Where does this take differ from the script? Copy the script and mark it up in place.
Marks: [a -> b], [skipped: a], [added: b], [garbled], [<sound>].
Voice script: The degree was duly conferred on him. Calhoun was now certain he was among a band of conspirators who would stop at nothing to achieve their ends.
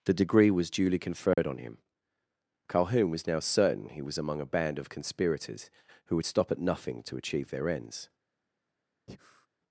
The degree was duly conferred [dropout] on him. Calhoun was now certain he was among a band of conspirators who would stop at nothing to achieve their ends. [breath]